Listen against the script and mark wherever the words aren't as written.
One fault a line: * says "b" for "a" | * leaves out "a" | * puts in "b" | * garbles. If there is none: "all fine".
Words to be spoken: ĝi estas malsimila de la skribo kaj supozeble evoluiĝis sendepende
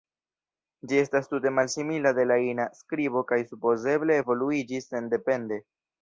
* puts in "tute"
* puts in "ina"